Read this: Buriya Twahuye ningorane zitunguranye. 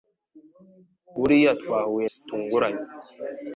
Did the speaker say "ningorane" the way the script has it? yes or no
no